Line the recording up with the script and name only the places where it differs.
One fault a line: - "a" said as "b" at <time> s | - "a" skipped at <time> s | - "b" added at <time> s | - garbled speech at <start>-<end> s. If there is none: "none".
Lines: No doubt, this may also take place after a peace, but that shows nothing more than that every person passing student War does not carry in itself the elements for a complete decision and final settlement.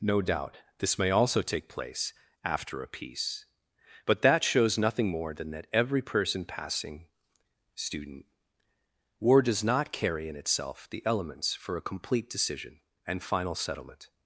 none